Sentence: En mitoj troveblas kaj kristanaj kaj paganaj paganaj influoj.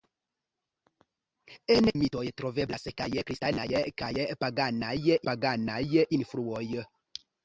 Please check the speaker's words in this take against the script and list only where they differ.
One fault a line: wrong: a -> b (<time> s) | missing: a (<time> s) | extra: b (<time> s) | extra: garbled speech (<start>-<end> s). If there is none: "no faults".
no faults